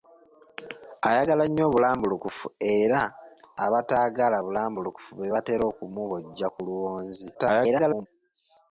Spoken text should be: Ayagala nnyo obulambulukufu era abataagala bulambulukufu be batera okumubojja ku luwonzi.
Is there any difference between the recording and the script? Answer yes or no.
yes